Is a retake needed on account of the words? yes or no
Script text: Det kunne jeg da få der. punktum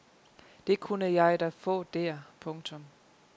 no